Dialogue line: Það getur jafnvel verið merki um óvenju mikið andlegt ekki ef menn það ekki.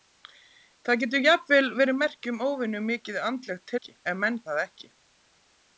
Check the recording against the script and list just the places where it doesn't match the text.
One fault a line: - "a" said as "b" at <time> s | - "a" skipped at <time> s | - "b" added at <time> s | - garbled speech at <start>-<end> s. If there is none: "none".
none